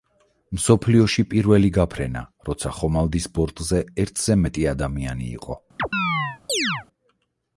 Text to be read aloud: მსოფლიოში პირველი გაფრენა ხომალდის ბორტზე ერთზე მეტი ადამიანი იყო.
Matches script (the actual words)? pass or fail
fail